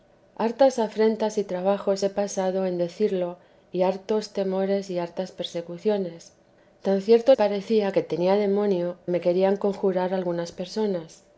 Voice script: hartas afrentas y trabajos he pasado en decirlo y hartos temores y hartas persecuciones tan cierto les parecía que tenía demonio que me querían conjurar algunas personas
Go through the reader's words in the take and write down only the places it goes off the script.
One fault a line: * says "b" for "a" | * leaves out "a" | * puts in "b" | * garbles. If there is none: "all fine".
* leaves out "les"
* leaves out "que"